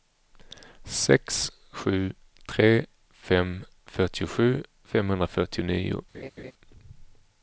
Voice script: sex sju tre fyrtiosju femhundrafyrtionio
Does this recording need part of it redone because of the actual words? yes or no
yes